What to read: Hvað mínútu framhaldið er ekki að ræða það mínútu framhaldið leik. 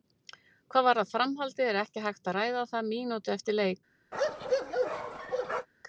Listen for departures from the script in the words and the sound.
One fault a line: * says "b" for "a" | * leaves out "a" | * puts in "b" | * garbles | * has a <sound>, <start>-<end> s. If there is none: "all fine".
* says "varðar" for "mínútu"
* puts in "hægt"
* says "eftir" for "framhaldið"
* has a bark, 4.1-5.7 s